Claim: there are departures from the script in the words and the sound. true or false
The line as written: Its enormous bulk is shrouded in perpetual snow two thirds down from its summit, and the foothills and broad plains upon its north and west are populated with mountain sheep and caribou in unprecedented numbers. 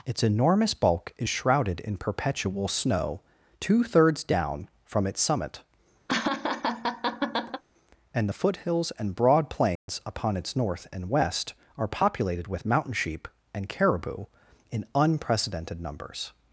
true